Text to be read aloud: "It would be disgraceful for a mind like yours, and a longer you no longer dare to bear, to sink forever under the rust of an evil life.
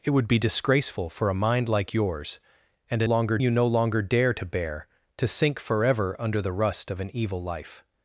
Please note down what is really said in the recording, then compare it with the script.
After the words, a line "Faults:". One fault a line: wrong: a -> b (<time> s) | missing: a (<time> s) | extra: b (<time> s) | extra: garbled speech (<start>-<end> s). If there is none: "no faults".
"It would be disgraceful for a mind like yours, and a longer you no longer dare to bear, to sink forever under the rust of an evil life.
Faults:
no faults